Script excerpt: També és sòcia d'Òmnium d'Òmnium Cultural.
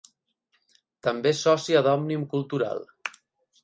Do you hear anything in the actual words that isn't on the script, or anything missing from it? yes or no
yes